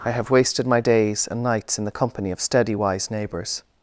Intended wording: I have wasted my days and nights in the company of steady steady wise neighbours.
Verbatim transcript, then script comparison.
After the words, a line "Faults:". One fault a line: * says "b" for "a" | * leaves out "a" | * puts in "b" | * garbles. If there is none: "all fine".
I have wasted my days and nights in the company of steady wise neighbours.
Faults:
* leaves out "steady"